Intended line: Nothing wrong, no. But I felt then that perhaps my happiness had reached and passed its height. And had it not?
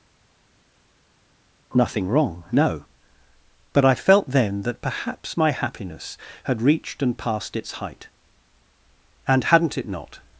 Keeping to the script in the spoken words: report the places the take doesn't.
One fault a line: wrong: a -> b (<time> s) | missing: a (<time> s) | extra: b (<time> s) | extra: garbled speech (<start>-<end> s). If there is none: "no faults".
wrong: had -> hadn't (9.4 s)